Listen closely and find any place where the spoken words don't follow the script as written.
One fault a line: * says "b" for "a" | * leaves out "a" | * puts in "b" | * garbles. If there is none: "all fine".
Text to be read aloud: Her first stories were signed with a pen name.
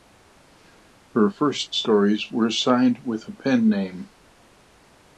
all fine